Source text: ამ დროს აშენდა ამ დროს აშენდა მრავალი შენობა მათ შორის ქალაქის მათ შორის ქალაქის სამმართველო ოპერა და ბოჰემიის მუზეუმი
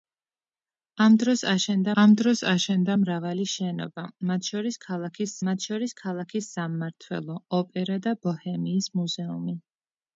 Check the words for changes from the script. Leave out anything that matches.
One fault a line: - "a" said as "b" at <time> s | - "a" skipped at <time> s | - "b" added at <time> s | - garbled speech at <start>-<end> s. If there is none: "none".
none